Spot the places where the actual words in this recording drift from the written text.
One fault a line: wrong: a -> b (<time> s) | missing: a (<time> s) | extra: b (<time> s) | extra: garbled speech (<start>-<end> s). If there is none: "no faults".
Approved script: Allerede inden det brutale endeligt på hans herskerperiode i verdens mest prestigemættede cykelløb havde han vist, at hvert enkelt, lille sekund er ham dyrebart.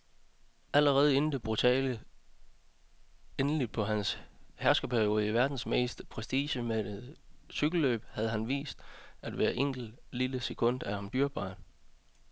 no faults